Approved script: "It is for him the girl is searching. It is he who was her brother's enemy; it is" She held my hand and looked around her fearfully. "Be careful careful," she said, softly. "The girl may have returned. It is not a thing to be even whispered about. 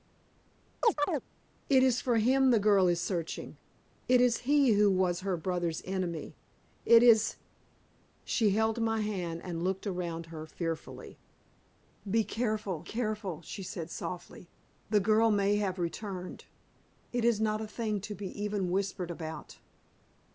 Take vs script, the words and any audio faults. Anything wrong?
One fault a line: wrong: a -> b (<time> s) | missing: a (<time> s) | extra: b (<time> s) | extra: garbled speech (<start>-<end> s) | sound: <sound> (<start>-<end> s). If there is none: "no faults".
sound: chirp (0.8-1.2 s)